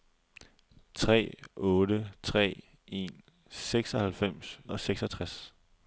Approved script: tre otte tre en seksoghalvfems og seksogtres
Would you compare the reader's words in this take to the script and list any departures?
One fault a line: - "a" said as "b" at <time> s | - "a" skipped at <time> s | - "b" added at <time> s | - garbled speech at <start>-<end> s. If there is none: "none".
none